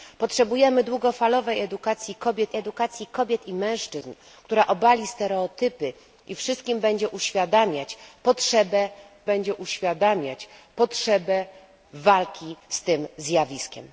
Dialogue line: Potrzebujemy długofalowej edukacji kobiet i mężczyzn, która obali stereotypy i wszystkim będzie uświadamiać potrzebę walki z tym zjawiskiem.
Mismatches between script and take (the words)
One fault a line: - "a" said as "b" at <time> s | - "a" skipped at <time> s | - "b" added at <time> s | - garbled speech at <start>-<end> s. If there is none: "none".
- "edukacji kobiet" added at 2.6 s
- "będzie uświadamiać potrzebę" added at 9.2 s